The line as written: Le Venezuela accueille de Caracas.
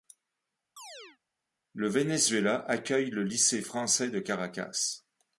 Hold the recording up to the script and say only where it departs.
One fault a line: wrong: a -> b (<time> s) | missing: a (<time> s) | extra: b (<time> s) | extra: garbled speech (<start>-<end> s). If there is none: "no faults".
extra: le lycée français (3.1 s)